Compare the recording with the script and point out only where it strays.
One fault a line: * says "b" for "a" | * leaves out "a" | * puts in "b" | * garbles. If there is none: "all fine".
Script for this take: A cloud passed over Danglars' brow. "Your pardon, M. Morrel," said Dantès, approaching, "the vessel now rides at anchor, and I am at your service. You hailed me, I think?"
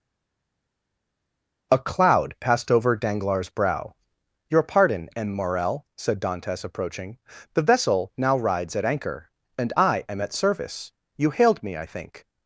* leaves out "your"